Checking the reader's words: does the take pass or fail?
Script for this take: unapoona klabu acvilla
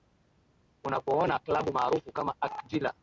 fail